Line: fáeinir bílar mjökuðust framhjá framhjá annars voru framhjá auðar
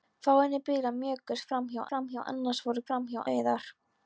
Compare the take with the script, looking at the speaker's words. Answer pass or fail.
pass